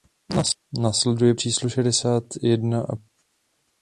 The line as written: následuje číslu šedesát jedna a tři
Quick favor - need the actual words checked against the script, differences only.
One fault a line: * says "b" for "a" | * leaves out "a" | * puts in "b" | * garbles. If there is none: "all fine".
all fine